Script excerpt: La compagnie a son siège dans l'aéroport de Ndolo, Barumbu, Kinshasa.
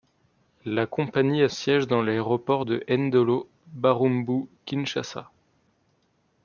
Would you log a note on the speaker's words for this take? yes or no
yes